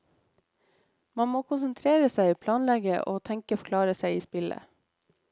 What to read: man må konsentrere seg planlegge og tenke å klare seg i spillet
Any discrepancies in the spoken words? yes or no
no